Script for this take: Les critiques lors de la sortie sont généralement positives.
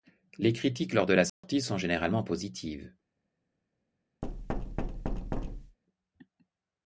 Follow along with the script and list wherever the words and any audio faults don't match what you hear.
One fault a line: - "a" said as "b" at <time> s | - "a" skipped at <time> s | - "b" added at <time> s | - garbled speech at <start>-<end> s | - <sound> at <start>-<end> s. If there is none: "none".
- dropout at 1.3-1.4 s
- thud at 4.2-5.8 s